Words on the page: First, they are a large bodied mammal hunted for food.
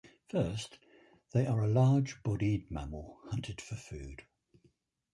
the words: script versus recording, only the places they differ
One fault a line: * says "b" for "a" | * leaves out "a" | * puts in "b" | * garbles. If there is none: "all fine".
all fine